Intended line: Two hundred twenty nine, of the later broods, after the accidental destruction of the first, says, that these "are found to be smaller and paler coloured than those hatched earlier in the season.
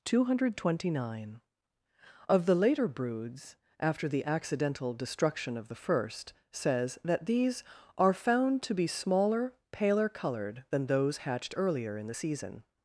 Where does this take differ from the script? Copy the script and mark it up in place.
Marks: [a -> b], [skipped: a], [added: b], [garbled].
Two hundred twenty nine, of the later broods, after the accidental destruction of the first, says, that these "are found to be smaller [skipped: and] paler coloured than those hatched earlier in the season.